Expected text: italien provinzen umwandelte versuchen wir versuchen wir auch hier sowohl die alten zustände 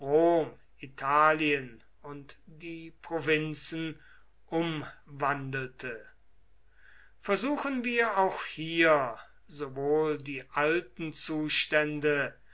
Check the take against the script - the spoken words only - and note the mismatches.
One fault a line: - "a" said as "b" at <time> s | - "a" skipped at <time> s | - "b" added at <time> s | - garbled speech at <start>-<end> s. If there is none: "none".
- "und die" added at 2.0 s
- "versuchen wir" skipped at 8.2 s